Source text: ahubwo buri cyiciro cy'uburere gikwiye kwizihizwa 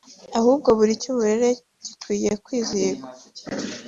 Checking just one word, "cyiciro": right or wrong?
wrong